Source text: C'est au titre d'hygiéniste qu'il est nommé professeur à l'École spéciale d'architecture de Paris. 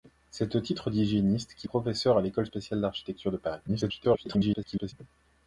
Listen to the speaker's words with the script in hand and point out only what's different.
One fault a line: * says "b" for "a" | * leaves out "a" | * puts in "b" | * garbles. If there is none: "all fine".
* leaves out "est nommé"
* garbles